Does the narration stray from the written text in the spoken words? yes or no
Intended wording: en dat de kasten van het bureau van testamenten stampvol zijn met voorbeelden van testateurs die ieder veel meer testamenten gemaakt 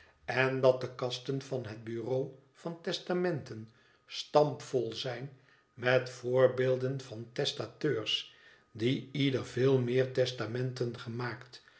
no